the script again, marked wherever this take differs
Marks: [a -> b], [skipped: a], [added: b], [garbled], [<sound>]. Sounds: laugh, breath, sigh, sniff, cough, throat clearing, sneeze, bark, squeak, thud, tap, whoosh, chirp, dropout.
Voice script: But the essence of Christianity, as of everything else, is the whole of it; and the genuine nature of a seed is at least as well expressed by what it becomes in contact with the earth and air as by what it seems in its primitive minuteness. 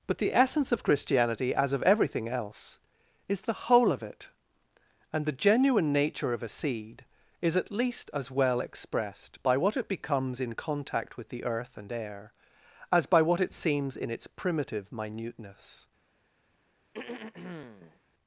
But the essence of Christianity, as of everything else, is the whole of it; and the genuine nature of a seed is at least as well expressed by what it becomes in contact with the earth and air as by what it seems in its primitive minuteness. [throat clearing]